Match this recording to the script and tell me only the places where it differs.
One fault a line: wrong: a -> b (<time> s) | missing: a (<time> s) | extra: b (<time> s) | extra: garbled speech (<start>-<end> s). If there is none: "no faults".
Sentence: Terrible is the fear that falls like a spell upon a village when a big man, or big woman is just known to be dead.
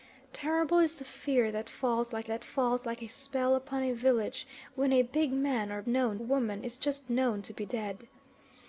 extra: that falls like (2.3 s)
wrong: big -> known (5.9 s)